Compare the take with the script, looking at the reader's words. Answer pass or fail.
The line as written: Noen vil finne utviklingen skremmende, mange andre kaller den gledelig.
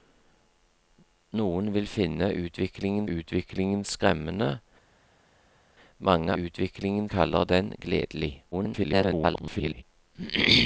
fail